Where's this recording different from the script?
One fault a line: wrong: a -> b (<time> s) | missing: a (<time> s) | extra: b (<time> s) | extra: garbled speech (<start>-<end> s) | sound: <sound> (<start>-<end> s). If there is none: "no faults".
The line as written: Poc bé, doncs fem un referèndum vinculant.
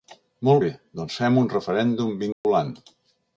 wrong: Poc -> Molt (0.5 s)
sound: dropout (2.3-2.4 s)